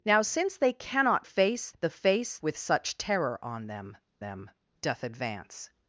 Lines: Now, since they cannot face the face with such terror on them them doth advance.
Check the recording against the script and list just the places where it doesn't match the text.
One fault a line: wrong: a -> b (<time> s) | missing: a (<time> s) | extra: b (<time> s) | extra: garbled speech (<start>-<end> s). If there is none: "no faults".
no faults